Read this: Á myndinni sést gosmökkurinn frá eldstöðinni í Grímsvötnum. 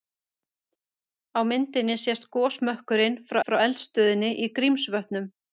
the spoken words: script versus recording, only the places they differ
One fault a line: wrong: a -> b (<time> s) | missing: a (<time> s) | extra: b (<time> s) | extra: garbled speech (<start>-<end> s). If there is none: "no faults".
extra: frá (3.4 s)